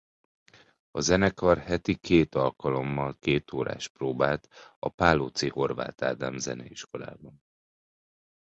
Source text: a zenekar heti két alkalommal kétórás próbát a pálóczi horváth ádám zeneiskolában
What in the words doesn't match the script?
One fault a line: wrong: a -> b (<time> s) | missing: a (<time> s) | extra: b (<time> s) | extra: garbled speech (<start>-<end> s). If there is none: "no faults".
no faults